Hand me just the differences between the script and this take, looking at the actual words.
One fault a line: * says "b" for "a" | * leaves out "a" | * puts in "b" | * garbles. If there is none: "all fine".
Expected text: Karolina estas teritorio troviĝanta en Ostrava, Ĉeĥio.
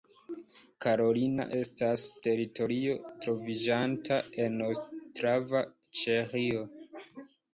all fine